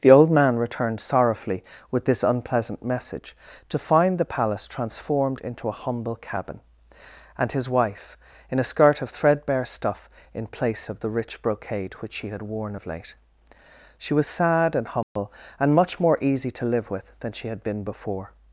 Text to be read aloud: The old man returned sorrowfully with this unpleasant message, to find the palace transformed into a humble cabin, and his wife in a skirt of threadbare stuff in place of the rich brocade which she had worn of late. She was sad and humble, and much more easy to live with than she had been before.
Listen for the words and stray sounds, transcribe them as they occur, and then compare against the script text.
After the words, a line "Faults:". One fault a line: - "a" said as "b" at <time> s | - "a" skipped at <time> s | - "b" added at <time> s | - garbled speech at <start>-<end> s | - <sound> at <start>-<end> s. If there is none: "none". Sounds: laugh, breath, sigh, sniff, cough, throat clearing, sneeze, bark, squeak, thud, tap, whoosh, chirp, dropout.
The old man returned sorrowfully with this unpleasant message, to find the palace transformed into a humble cabin, and his wife in a skirt of threadbare stuff in place of the rich brocade which she had worn of late. She was sad and humble, and much more easy to live with than she had been before.
Faults:
- dropout at 15.0-15.2 s